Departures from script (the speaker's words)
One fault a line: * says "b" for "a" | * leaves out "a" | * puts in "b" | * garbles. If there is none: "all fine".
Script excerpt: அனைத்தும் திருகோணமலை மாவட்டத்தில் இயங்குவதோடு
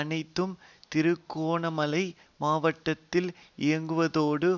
all fine